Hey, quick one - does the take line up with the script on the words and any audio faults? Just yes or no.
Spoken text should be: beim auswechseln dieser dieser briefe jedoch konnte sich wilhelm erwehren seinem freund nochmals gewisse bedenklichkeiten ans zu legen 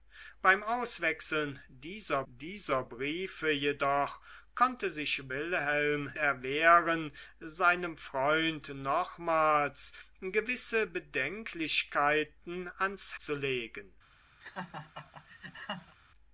no